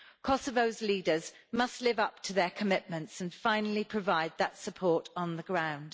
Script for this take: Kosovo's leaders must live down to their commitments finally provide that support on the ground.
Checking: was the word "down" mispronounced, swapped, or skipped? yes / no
yes